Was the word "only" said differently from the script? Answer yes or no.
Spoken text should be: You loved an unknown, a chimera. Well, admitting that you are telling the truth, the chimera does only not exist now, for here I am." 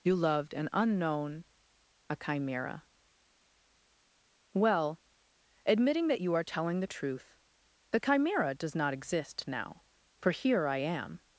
yes